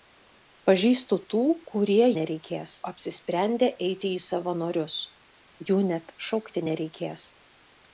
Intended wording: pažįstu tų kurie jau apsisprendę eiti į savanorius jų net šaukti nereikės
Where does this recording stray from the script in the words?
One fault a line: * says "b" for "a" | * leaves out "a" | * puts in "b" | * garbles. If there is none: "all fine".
* says "nereikės" for "jau"